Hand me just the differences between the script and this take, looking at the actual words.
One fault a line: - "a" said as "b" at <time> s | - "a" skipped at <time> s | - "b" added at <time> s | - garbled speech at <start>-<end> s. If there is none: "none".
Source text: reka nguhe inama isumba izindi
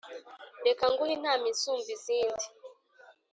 none